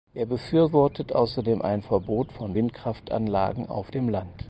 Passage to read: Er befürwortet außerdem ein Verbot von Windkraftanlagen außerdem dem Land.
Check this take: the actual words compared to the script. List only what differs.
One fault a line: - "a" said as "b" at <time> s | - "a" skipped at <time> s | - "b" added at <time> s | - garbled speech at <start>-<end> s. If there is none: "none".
- "außerdem" said as "auf" at 3.7 s